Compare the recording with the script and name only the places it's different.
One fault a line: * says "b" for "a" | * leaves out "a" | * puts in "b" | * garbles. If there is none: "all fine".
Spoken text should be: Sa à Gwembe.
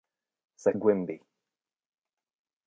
all fine